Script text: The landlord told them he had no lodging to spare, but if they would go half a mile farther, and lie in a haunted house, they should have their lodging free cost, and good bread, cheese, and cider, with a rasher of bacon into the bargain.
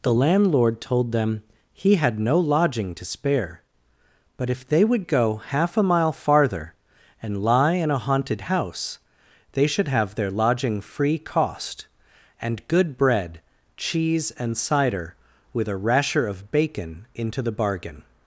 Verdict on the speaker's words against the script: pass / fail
pass